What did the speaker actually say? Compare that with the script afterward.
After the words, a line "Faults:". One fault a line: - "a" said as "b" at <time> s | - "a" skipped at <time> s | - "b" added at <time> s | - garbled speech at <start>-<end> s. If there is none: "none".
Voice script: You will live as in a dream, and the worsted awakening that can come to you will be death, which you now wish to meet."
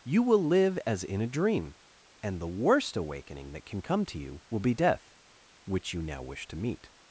You will live as in a dream, and the worst awakening that can come to you will be death, which you now wish to meet."
Faults:
- "worsted" said as "worst" at 2.5 s